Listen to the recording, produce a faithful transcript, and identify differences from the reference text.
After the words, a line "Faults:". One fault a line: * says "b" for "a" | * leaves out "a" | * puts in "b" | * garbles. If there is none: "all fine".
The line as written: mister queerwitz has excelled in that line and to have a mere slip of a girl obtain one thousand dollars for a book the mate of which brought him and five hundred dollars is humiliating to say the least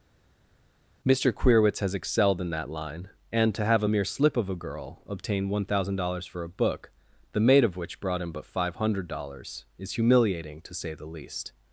mister queerwitz has excelled in that line and to have a mere slip of a girl obtain one thousand dollars for a book the mate of which brought him but five hundred dollars is humiliating to say the least
Faults:
* says "but" for "and"